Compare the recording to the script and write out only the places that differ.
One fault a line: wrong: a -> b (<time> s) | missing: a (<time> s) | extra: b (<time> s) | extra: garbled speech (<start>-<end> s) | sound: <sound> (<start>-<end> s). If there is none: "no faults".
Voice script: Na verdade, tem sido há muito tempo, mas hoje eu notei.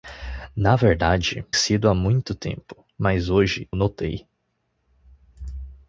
missing: tem (1.4 s)
missing: eu (3.7 s)